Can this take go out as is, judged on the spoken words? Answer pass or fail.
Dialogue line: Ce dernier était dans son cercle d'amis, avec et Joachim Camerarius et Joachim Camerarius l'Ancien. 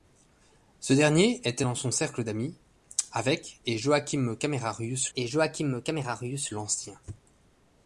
pass